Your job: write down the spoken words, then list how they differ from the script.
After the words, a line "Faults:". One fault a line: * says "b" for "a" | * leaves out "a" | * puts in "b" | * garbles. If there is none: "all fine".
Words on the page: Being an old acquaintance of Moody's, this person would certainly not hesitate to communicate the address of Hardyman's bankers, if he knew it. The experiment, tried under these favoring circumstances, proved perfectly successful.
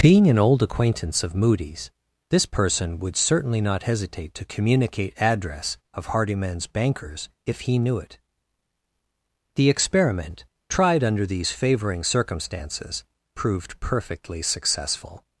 Being an old acquaintance of Moody's, this person would certainly not hesitate to communicate address of Hardyman's bankers, if he knew it. The experiment, tried under these favoring circumstances, proved perfectly successful.
Faults:
* leaves out "the"